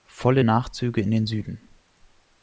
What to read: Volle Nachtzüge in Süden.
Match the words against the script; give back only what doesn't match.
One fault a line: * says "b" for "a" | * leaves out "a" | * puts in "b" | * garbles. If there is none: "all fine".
* puts in "den"